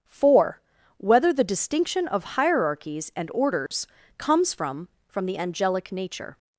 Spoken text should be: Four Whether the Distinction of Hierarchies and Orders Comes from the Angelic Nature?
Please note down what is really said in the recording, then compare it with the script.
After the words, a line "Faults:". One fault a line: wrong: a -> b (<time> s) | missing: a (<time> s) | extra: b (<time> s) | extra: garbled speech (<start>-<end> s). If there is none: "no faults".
Four Whether the Distinction of Hierarchies and Orders Comes from from the Angelic Nature?
Faults:
extra: from (5.1 s)